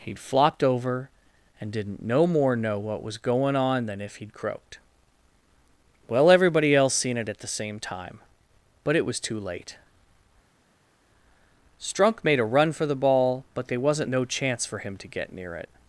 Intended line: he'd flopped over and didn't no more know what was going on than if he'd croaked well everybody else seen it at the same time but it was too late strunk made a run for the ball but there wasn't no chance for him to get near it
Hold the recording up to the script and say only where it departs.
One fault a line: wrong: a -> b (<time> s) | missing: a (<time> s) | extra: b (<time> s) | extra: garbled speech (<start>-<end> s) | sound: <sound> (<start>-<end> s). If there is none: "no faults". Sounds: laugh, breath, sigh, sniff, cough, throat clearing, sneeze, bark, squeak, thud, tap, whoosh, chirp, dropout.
no faults